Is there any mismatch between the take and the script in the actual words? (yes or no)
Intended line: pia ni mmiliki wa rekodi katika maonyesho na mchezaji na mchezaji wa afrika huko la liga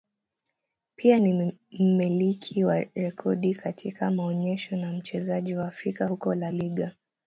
yes